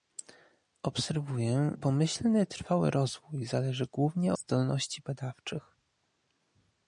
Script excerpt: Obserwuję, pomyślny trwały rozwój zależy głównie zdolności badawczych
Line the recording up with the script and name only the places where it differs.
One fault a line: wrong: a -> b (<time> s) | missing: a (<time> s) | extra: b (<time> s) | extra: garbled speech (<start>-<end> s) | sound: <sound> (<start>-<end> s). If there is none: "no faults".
no faults